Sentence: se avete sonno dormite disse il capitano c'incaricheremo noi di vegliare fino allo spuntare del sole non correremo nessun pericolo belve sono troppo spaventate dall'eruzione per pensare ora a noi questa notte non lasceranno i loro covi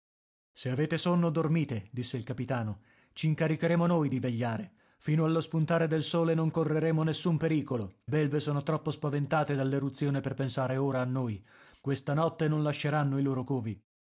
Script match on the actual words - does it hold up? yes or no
yes